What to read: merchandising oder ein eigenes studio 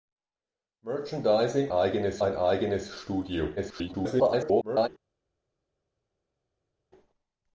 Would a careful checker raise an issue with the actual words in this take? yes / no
yes